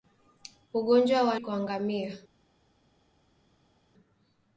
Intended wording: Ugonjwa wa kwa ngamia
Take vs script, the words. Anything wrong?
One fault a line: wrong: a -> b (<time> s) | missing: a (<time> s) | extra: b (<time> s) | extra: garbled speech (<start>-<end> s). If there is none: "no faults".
no faults